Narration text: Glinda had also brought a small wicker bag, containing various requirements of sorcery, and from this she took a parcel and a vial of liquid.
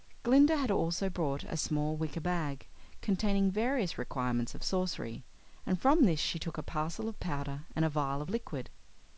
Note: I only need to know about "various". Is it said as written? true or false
true